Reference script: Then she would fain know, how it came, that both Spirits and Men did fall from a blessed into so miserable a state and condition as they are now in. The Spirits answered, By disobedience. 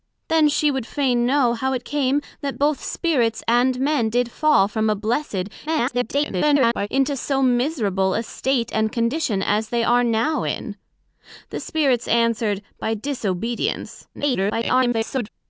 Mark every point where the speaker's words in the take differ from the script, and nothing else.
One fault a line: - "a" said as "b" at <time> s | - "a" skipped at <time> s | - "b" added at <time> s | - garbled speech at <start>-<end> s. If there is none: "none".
- garbled speech at 5.7-6.9 s
- garbled speech at 14.1-15.3 s